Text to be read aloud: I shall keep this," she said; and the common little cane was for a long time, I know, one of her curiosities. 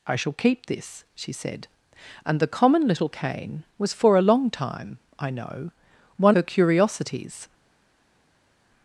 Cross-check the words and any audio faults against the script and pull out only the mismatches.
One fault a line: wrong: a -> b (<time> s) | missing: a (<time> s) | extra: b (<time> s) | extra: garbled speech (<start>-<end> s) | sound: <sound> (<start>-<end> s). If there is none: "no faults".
missing: of (6.3 s)